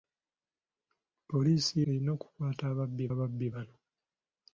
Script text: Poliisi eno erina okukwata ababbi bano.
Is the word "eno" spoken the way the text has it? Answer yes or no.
no